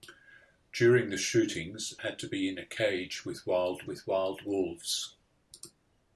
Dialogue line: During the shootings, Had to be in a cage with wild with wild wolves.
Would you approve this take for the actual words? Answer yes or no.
yes